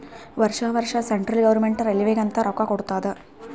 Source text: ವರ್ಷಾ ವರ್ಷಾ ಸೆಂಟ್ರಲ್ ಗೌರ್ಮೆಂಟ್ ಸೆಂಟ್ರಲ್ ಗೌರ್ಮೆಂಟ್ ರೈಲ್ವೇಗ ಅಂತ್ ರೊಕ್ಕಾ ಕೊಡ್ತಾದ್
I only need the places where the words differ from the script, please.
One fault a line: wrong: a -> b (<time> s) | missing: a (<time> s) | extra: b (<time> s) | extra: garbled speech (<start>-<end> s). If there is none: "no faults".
missing: ಸೆಂಟ್ರಲ್ ಗೌರ್ಮೆಂಟ್ (1.9 s)